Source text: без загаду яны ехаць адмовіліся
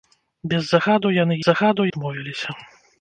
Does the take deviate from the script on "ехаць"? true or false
true